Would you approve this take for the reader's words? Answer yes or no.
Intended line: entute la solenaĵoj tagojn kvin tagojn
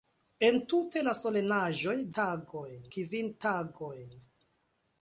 yes